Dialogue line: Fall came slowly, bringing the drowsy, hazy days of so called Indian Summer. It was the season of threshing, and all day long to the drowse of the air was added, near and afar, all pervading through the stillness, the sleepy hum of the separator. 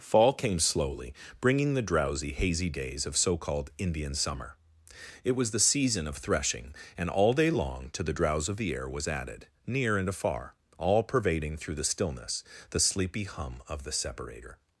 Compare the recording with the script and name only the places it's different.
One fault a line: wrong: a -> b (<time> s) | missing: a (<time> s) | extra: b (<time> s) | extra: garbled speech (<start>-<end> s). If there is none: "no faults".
no faults